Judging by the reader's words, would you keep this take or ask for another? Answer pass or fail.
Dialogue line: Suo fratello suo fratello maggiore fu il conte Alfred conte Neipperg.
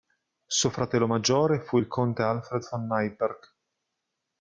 fail